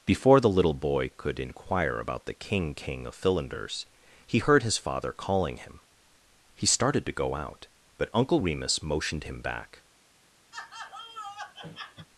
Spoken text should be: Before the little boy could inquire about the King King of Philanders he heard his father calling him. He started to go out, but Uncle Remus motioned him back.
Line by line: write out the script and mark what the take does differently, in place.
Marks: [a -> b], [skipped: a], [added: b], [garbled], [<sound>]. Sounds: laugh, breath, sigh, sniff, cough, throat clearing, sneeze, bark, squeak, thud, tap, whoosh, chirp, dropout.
Before the little boy could inquire about the King King of Philanders he heard his father calling him. He started to go out, but Uncle Remus motioned him back. [laugh]